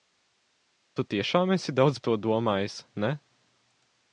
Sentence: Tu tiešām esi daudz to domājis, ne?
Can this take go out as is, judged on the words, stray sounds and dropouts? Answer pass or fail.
pass